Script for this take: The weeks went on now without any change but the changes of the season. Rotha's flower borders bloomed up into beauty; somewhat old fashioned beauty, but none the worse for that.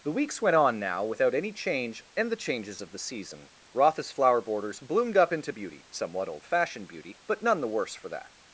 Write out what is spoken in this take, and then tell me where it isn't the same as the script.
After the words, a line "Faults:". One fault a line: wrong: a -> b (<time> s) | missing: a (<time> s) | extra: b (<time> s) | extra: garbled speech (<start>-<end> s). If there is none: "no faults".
The weeks went on now without any change and the changes of the season. Rotha's flower borders bloomed up into beauty; somewhat old fashioned beauty, but none the worse for that.
Faults:
wrong: but -> and (2.1 s)